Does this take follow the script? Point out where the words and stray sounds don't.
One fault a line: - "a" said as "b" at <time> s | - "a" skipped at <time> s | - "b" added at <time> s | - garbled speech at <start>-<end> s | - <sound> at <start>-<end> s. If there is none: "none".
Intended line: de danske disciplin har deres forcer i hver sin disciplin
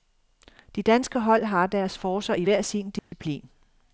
- "disciplin" said as "hold" at 1.2 s
- dropout at 3.0-3.1 s